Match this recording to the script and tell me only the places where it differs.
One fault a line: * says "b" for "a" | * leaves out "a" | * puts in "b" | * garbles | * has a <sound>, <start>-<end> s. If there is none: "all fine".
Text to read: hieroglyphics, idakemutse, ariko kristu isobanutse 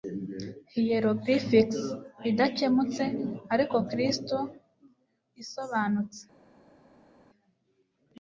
all fine